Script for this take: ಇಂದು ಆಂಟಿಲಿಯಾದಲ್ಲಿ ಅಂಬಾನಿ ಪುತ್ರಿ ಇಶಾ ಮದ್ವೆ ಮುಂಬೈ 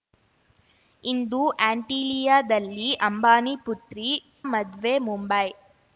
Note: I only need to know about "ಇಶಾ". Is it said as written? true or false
false